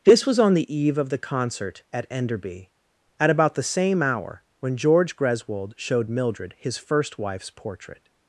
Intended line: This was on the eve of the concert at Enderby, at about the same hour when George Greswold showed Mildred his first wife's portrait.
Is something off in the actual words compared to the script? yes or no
no